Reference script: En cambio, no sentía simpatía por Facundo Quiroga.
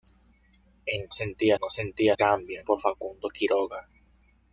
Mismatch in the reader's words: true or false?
true